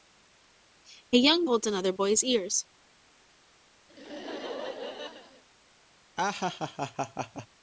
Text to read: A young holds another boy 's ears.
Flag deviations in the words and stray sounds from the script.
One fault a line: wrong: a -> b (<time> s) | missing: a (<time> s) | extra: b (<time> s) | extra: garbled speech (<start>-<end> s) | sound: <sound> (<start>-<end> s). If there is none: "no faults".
sound: laugh (3.9-5.4 s)
sound: laugh (6.2-7.5 s)